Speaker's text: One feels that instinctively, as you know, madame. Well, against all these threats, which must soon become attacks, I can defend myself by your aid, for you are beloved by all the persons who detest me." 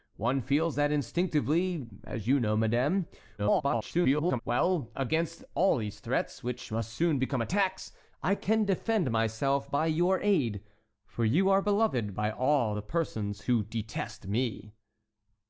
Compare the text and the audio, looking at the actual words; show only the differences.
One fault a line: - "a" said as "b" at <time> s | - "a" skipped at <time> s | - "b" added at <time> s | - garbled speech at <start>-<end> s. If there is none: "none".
- garbled speech at 3.4-4.4 s